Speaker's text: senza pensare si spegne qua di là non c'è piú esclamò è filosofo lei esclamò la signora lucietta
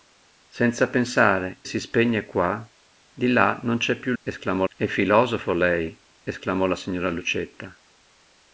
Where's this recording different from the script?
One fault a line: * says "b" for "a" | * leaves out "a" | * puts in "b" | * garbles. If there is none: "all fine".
all fine